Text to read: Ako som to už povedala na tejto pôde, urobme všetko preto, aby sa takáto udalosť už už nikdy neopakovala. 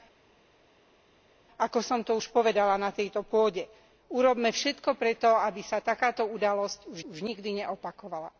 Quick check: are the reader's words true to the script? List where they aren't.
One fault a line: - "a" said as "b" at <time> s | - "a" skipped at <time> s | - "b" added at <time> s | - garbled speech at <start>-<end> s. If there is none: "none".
none